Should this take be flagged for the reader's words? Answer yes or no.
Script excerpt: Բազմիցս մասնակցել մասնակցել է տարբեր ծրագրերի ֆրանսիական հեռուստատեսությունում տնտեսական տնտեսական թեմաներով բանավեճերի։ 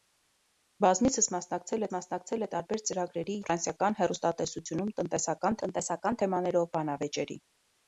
no